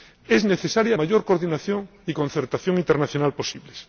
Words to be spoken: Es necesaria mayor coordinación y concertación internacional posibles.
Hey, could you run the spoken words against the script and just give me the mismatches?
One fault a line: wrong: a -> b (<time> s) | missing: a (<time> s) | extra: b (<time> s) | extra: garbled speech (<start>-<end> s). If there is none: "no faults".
no faults